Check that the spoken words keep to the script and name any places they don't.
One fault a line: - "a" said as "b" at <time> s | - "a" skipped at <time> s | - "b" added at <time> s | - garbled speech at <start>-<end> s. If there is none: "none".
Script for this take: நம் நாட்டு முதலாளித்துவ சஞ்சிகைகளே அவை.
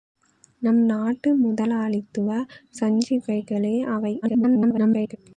- garbled speech at 4.2-5.2 s